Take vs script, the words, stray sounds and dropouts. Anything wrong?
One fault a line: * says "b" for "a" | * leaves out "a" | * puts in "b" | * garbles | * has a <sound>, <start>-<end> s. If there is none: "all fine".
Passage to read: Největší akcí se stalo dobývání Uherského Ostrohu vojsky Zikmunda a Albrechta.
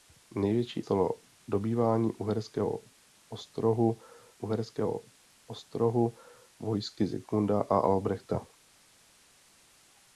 * says "stalo dobývání Uherského Ostrohu" for "akcí se stalo dobývání"